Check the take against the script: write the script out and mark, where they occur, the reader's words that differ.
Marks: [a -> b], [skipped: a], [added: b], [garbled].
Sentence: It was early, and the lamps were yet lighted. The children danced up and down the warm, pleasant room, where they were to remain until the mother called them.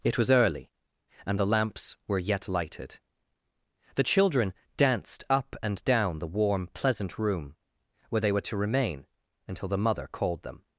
It was early, and the lamps were yet lighted. The children danced up and down the warm, pleasant room, where they were to remain until the mother called them.